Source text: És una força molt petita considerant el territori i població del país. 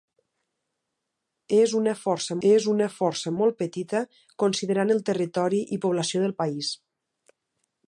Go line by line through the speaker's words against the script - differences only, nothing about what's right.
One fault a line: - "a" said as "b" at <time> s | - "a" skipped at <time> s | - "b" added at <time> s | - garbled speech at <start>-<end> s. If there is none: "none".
- "és una força" added at 2.5 s